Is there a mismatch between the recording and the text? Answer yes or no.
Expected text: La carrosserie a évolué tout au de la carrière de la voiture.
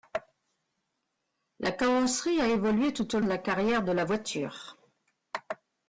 no